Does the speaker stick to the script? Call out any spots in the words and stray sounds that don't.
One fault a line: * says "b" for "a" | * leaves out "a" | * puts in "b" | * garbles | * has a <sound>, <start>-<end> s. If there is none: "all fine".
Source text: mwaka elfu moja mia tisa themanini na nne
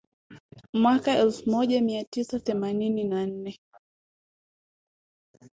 all fine